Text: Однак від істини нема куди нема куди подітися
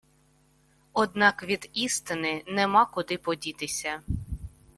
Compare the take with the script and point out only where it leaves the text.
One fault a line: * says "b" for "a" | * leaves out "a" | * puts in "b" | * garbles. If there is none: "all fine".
* leaves out "нема куди"